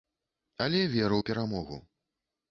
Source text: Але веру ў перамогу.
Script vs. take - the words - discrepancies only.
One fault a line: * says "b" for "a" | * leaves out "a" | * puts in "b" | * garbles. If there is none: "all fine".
all fine